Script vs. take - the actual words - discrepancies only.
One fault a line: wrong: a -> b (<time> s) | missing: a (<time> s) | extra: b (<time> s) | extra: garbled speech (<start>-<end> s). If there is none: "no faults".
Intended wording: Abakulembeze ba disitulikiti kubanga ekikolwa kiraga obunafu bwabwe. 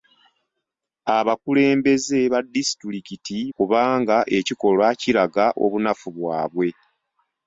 no faults